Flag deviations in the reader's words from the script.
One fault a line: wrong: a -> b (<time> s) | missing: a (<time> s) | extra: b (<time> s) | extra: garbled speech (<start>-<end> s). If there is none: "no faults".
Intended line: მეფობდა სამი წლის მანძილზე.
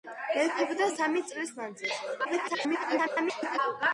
extra: garbled speech (2.2-3.6 s)